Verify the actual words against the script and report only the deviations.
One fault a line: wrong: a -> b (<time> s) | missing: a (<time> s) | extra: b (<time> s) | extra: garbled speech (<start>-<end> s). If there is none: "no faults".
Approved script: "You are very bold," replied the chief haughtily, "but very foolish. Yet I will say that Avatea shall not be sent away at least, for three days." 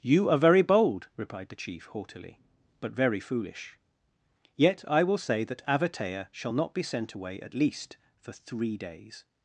no faults